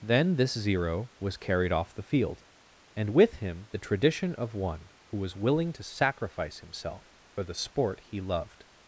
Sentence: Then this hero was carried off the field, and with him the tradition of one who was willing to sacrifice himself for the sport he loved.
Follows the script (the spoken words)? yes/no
no